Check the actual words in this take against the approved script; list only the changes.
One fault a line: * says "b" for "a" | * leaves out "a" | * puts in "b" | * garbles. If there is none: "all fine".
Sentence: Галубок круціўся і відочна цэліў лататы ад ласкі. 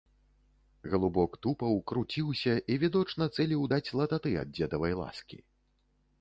* puts in "тупаў"
* puts in "даць"
* puts in "дзедавай"